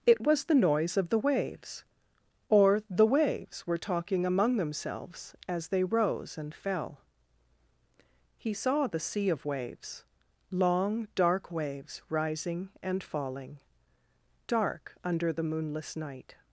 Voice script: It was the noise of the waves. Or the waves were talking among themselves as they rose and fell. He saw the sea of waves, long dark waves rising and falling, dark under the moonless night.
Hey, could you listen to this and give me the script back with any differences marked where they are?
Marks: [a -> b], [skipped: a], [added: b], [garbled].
It was the noise of the waves. Or the waves were talking among themselves as they rose and fell. He saw the sea of waves, long dark waves rising and falling, dark under the moonless night.